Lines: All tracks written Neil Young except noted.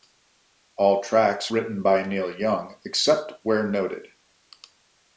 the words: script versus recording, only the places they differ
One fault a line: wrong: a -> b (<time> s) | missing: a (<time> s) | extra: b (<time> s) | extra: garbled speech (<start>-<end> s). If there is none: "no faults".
extra: by (1.8 s)
extra: where (3.4 s)